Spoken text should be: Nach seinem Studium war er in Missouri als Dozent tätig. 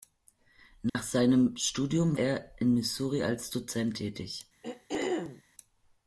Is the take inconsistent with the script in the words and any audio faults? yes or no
yes